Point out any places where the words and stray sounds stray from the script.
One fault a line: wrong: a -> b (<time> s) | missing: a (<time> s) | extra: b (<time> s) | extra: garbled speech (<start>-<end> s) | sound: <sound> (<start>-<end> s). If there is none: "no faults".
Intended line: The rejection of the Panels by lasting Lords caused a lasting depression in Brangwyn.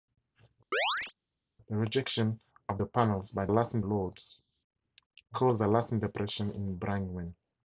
sound: chirp (0.7-1.1 s)